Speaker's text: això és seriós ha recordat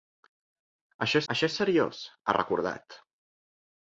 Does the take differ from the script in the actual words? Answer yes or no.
yes